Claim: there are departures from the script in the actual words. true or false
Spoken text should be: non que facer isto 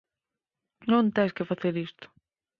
true